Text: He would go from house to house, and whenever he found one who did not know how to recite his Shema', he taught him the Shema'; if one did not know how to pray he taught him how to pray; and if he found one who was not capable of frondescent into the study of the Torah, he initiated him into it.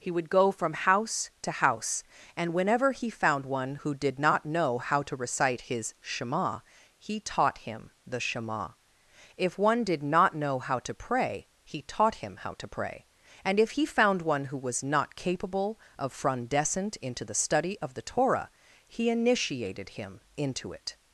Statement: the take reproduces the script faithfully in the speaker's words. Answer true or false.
true